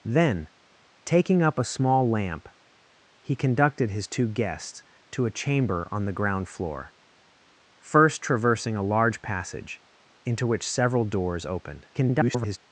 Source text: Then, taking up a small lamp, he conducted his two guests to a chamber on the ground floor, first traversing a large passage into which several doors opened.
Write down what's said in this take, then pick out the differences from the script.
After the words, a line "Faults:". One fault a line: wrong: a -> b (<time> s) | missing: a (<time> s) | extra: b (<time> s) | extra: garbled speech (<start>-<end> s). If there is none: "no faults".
Then, taking up a small lamp, he conducted his two guests to a chamber on the ground floor, first traversing a large passage into which several doors opened. [garbled]
Faults:
extra: garbled speech (11.9-12.6 s)